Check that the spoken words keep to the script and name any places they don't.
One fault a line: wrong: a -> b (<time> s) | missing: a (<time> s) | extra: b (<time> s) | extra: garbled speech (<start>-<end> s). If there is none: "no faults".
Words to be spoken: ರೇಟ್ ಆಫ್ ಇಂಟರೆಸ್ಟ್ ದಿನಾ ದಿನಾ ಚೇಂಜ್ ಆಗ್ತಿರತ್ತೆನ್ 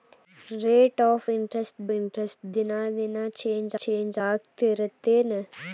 extra: ಇಂಟರೆಸ್ಟ್ (1.9 s)
extra: ಚೇಂಜ್ (3.8 s)